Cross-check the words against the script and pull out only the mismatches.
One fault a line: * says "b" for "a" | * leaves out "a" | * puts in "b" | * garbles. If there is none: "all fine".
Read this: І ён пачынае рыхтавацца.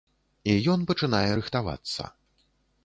all fine